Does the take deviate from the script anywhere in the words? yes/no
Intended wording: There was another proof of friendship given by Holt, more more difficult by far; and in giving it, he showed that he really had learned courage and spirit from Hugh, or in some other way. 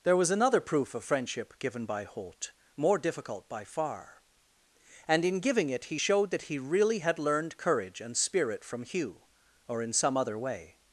yes